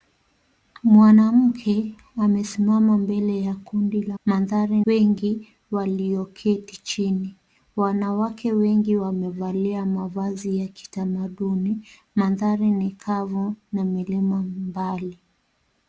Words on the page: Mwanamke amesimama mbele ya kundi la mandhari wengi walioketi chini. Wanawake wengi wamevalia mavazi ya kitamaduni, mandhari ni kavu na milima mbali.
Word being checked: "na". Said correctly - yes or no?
yes